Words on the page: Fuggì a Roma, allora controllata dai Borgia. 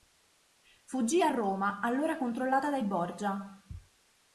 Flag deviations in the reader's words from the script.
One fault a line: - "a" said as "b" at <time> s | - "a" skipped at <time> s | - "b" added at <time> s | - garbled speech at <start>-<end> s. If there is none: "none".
none